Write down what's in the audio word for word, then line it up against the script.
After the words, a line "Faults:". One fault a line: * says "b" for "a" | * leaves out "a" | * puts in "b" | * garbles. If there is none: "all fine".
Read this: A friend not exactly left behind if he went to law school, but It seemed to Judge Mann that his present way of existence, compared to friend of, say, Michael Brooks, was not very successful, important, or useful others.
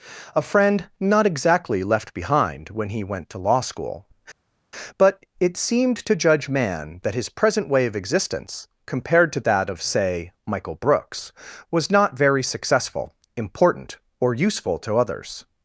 A friend not exactly left behind when he went to law school, but It seemed to Judge Mann that his present way of existence, compared to that of, say, Michael Brooks, was not very successful, important, or useful to others.
Faults:
* says "when" for "if"
* says "that" for "friend"
* puts in "to"